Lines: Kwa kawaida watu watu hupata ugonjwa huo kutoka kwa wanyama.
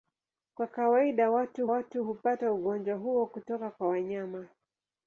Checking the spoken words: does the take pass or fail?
pass